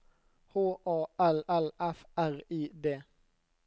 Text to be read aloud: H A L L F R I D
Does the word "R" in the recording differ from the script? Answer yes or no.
no